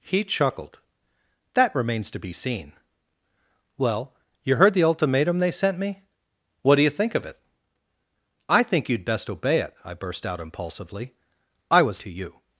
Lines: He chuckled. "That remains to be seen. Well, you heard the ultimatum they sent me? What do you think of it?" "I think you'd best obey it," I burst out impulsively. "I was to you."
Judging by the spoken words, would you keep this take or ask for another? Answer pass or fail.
pass